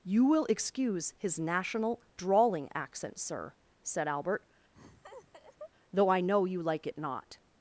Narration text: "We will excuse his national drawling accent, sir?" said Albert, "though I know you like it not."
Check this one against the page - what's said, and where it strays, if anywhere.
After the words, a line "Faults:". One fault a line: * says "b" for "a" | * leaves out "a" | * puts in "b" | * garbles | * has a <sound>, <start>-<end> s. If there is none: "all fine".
"You will excuse his national drawling accent, sir?" said Albert, "though I know you like it not."
Faults:
* says "You" for "We"
* has a laugh, 4.7-5.7 s